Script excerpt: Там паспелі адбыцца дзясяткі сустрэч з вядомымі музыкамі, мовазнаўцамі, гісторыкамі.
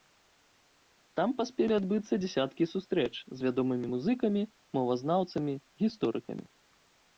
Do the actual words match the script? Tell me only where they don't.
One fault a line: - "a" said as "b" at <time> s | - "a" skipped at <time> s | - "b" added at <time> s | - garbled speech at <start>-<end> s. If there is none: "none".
none